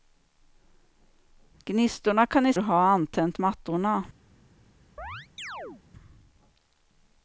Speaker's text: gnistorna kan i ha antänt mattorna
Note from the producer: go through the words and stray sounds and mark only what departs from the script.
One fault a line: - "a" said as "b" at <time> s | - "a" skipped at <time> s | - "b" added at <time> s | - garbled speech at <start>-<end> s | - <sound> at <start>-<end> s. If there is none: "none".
- chirp at 5.0-5.8 s